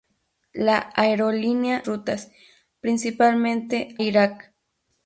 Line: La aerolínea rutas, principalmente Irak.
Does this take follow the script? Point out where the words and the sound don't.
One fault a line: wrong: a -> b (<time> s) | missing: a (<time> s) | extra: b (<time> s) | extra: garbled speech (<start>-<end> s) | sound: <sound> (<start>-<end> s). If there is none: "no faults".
no faults